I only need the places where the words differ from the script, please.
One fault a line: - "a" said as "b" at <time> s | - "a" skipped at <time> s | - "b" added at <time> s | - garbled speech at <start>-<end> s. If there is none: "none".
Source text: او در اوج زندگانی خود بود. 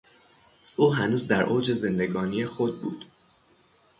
- "هنوز" added at 0.9 s